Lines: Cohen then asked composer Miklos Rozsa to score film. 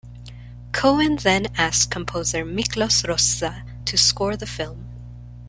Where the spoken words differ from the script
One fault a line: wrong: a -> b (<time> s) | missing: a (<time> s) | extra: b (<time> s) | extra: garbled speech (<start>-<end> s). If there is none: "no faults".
extra: the (4.4 s)